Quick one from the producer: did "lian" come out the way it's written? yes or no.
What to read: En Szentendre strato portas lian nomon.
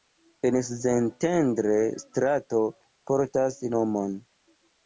no